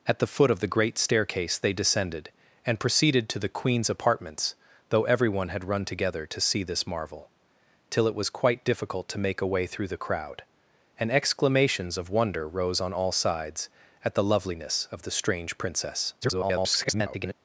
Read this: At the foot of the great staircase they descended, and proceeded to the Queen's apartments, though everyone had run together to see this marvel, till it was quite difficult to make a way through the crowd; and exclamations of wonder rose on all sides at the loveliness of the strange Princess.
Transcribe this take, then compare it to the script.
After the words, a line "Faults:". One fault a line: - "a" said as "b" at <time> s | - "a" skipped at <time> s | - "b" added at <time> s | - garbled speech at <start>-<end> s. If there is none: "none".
At the foot of the great staircase they descended, and proceeded to the Queen's apartments, though everyone had run together to see this marvel, till it was quite difficult to make a way through the crowd; and exclamations of wonder rose on all sides at the loveliness of the strange Princess. [garbled]
Faults:
- garbled speech at 16.2-17.3 s